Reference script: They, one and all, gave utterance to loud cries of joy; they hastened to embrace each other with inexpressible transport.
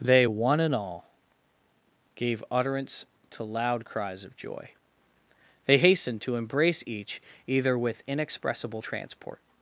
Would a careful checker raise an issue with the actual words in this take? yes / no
yes